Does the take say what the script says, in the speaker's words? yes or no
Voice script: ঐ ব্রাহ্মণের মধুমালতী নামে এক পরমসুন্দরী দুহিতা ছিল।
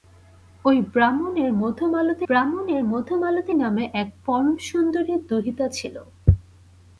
no